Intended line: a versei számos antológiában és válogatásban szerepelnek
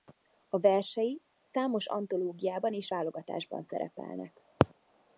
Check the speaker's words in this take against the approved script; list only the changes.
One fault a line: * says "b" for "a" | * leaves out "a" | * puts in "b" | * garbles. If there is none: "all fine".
all fine